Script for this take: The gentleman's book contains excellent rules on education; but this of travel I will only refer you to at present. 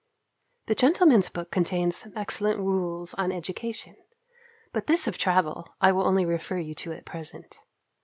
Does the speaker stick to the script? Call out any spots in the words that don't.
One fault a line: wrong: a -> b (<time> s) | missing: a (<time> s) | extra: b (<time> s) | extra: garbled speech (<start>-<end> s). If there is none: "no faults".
no faults